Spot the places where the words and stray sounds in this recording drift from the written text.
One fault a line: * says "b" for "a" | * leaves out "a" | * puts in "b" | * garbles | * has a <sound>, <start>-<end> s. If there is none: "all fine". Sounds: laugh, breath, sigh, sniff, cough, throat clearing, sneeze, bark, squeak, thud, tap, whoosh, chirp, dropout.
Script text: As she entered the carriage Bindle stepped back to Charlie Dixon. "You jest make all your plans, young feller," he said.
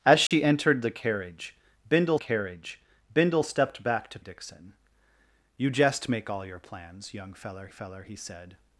* has a dropout, 0.3-0.3 s
* puts in "carriage Bindle"
* leaves out "Charlie"
* puts in "feller"